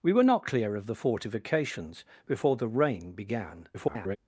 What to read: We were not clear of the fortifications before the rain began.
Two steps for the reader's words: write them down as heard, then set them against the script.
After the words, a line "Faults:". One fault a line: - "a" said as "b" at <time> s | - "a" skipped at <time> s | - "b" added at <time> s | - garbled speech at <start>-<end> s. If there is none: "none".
We were not clear of the fortifications before the rain began. [garbled]
Faults:
- garbled speech at 3.7-4.2 s